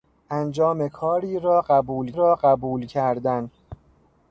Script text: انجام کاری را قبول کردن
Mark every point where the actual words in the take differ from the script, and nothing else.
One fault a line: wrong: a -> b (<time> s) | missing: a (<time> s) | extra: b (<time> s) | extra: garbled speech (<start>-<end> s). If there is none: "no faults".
extra: را قبول (2.1 s)